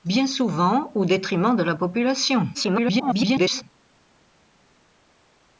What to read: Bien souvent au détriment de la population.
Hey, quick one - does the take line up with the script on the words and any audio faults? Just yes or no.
no